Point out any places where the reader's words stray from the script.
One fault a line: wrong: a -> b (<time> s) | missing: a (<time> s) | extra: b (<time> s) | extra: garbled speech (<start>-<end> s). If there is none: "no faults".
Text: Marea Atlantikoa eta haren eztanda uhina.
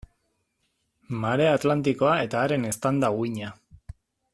no faults